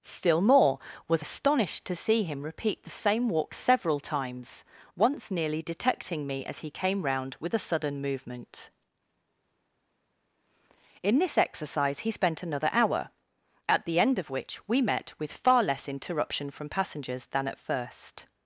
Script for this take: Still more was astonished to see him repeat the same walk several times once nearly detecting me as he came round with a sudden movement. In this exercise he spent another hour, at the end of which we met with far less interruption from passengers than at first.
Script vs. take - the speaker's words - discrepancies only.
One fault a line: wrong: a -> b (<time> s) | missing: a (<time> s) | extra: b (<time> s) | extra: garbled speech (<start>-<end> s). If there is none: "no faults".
no faults